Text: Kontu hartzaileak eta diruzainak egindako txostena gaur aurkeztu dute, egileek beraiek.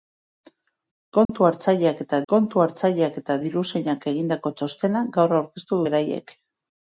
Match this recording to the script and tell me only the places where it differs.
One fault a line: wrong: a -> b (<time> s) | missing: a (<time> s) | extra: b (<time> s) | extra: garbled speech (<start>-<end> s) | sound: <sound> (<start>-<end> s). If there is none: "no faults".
sound: dropout (1.2-1.3 s)
extra: kontu hartzaileak eta (2.3 s)
missing: dute egileek (5.8 s)